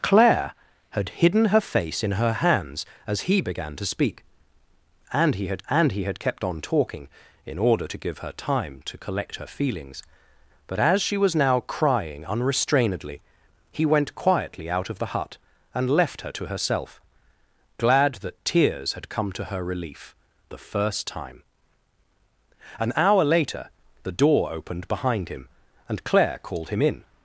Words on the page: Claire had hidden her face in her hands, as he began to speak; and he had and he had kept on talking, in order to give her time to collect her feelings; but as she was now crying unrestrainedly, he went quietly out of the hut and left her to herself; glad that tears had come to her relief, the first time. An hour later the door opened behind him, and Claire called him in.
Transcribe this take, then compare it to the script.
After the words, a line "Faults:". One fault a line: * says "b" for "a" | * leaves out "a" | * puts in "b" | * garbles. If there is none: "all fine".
Claire had hidden her face in her hands, as he began to speak; and he had and he had kept on talking, in order to give her time to collect her feelings; but as she was now crying unrestrainedly, he went quietly out of the hut and left her to herself; glad that tears had come to her relief, the first time. An hour later the door opened behind him, and Claire called him in.
Faults:
all fine